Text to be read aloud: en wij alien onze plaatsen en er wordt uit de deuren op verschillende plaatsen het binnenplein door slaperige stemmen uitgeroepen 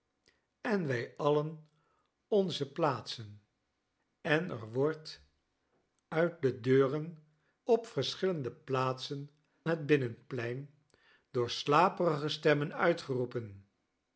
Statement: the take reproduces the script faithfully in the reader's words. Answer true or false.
true